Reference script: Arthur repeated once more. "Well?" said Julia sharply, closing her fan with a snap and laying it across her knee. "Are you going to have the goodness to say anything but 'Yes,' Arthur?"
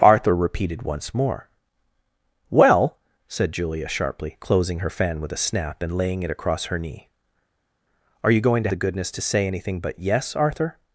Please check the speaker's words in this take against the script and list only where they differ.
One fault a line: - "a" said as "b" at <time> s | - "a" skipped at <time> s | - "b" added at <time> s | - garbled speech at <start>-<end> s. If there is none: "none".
- "have" skipped at 8.7 s